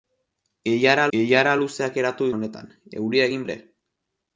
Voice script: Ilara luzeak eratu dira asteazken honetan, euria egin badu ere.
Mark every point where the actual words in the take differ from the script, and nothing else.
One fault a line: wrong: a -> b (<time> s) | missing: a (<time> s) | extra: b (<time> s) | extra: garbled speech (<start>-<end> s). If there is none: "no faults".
extra: ilara (1.2 s)
missing: dira asteazken (2.3 s)
missing: badu (3.5 s)